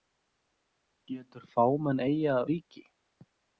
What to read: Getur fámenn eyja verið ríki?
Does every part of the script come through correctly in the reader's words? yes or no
no